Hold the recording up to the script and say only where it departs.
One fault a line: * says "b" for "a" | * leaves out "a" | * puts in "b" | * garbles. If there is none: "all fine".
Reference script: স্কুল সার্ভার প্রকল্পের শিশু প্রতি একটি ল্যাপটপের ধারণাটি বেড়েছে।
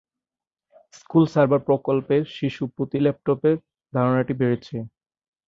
* leaves out "একটি"